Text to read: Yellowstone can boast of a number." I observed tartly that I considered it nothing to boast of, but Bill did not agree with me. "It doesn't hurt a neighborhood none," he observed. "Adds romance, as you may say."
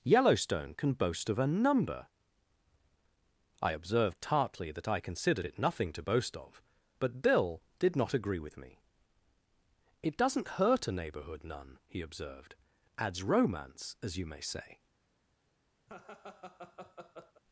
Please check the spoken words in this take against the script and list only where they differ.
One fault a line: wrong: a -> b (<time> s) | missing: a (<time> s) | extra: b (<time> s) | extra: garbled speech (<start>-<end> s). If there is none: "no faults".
no faults